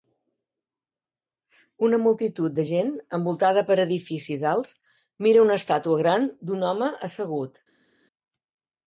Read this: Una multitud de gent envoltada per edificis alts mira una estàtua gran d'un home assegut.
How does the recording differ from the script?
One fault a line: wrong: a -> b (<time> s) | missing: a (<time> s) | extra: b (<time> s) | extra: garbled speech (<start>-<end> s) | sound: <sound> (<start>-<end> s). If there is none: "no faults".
no faults